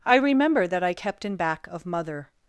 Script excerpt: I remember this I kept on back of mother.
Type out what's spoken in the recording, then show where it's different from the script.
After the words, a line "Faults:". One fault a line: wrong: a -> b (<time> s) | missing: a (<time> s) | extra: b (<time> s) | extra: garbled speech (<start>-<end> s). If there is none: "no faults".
I remember that I kept in back of mother.
Faults:
wrong: this -> that (0.7 s)
wrong: on -> in (1.3 s)